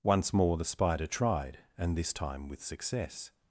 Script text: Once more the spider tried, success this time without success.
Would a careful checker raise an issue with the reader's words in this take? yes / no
yes